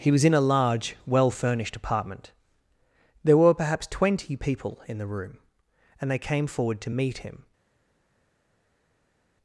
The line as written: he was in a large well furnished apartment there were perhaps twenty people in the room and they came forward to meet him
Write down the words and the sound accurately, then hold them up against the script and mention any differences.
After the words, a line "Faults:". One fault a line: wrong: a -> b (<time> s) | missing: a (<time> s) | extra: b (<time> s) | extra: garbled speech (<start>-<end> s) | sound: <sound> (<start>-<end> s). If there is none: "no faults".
he was in a large well furnished apartment there were perhaps twenty people in the room and they came forward to meet him
Faults:
no faults